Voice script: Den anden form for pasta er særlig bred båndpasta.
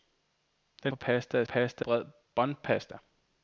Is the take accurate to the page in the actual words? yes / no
no